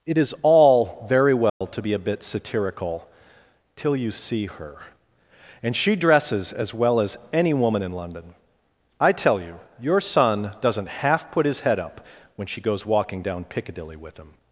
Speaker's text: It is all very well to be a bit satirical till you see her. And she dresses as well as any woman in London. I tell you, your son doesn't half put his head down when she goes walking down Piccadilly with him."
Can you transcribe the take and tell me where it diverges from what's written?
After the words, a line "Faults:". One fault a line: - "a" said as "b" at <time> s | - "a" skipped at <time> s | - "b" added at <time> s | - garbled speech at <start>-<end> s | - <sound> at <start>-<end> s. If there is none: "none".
It is all very well to be a bit satirical till you see her. And she dresses as well as any woman in London. I tell you, your son doesn't half put his head up when she goes walking down Piccadilly with him."
Faults:
- dropout at 1.5-1.6 s
- "down" said as "up" at 11.8 s